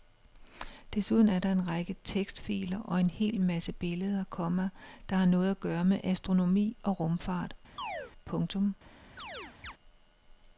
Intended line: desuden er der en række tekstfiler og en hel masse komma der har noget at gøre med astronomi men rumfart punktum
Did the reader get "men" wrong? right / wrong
wrong